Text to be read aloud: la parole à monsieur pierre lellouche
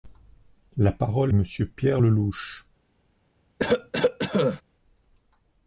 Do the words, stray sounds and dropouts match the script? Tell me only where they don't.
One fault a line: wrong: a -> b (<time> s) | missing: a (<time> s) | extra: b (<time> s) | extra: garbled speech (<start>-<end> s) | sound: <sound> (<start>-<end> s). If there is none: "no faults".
sound: cough (3.6-4.6 s)